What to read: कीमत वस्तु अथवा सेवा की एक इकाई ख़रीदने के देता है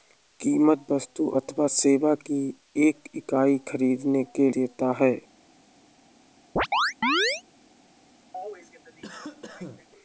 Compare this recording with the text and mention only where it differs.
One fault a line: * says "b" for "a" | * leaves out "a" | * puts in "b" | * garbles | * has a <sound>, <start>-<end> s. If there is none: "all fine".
* has a chirp, 6.6-7.4 s
* has a cough, 8.3-9.9 s